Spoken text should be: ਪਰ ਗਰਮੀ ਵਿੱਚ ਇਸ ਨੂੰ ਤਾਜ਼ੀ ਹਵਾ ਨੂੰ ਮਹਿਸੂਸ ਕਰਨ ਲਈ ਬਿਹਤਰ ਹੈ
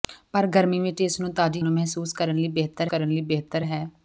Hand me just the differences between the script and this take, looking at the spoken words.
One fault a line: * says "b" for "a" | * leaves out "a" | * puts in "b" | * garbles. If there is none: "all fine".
* leaves out "ਹਵਾ"
* puts in "ਕਰਨ ਲਈ ਬਿਹਤਰ"